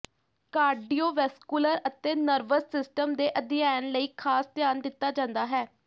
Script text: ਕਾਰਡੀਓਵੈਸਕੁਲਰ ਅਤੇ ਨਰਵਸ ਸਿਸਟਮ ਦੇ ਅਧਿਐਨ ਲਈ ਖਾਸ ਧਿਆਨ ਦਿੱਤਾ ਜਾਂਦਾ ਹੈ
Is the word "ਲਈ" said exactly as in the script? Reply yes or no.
yes